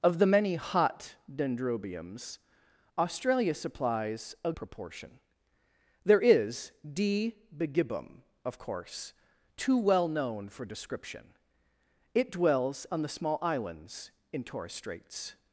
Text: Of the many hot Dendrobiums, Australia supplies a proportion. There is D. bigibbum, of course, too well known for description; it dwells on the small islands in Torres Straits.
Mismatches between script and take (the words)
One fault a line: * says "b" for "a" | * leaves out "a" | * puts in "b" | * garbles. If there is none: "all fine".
all fine